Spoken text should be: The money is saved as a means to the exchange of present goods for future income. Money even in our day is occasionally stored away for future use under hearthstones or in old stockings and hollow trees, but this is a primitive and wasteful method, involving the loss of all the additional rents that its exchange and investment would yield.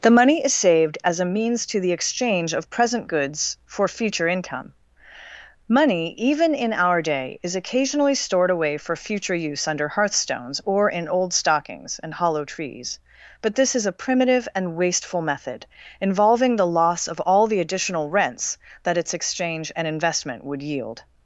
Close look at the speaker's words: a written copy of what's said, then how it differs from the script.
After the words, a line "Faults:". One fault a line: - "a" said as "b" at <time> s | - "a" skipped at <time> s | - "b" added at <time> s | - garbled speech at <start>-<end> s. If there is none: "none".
The money is saved as a means to the exchange of present goods for future income. Money even in our day is occasionally stored away for future use under hearthstones or in old stockings and hollow trees, but this is a primitive and wasteful method, involving the loss of all the additional rents that its exchange and investment would yield.
Faults:
none